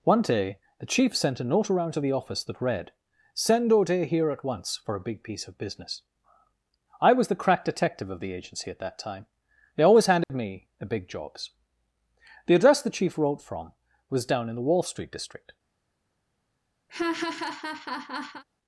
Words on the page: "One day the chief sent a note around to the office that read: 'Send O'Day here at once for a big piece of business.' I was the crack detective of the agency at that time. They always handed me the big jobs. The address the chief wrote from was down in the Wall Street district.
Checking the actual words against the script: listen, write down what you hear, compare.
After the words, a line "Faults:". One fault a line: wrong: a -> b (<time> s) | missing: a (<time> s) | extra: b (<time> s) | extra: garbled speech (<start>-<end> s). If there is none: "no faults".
"One day the chief sent a note around to the office that read: 'Send O'Day here at once for a big piece of business.' I was the crack detective of the agency at that time. They always handed me the big jobs. The address the chief wrote from was down in the Wall Street district.
Faults:
no faults